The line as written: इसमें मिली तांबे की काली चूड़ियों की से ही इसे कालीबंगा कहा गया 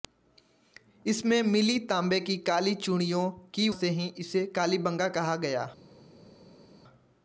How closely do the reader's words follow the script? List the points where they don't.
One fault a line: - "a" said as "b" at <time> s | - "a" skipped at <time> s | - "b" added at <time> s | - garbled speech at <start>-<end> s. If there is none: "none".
none